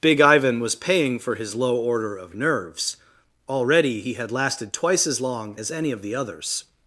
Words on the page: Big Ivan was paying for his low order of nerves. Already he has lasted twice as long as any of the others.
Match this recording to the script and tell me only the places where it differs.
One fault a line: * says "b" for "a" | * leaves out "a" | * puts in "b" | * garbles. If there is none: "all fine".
* says "had" for "has"